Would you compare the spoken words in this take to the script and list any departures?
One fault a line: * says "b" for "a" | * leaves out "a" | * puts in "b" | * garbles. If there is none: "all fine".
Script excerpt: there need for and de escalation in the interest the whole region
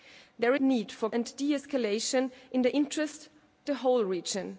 all fine